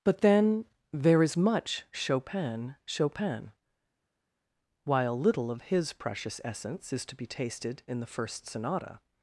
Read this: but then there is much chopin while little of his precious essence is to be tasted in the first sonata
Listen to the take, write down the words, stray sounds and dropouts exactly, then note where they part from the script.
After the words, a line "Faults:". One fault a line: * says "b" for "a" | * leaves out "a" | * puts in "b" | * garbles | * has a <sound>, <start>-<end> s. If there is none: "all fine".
but then there is much chopin chopin while little of his precious essence is to be tasted in the first sonata
Faults:
* puts in "chopin"